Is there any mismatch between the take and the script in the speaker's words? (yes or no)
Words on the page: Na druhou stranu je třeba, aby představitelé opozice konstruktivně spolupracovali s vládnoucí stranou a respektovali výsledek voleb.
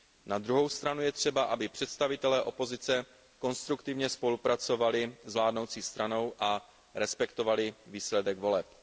no